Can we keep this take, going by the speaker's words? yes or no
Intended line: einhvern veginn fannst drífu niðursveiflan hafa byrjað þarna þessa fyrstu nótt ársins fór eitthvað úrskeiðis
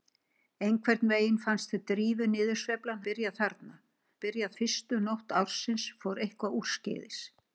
no